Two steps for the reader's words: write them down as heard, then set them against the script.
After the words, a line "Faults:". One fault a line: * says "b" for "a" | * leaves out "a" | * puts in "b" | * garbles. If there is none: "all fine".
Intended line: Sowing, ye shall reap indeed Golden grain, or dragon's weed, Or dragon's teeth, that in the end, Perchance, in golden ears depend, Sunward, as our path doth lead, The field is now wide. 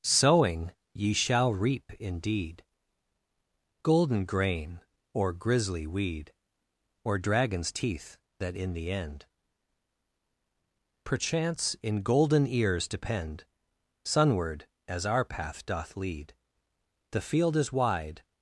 Sowing, ye shall reap indeed Golden grain, or grisly weed, Or dragon's teeth, that in the end, Perchance, in golden ears depend, Sunward, as our path doth lead, The field is wide.
Faults:
* says "grisly" for "dragon's"
* leaves out "now"